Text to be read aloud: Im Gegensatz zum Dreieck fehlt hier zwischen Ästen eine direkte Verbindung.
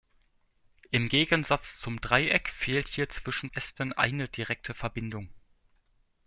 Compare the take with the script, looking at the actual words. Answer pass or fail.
pass